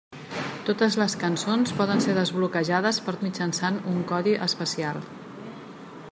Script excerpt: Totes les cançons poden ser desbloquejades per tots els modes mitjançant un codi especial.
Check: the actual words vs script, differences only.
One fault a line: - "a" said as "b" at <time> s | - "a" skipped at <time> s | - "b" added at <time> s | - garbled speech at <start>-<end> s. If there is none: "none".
- "tots els modes" skipped at 3.1 s